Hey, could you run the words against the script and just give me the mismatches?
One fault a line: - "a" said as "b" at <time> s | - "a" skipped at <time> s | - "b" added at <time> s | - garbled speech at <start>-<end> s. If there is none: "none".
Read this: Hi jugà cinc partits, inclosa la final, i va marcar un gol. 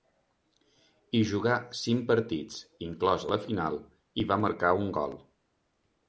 none